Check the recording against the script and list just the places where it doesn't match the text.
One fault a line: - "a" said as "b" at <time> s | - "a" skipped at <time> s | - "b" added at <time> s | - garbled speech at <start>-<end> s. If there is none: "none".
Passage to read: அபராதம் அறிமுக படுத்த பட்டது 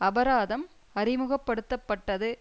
none